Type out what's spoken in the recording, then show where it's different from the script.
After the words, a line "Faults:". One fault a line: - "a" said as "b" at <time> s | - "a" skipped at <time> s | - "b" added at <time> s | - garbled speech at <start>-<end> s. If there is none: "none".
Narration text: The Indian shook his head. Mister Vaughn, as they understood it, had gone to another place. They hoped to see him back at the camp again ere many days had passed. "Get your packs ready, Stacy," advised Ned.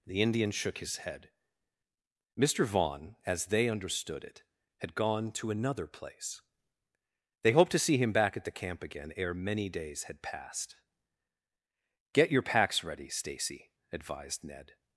The Indian shook his head. Mister Vaughn, as they understood it, had gone to another place. They hoped to see him back at the camp again ere many days had passed. "Get your packs ready, Stacy," advised Ned.
Faults:
none